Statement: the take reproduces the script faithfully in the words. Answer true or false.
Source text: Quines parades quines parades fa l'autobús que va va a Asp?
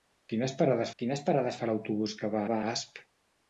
true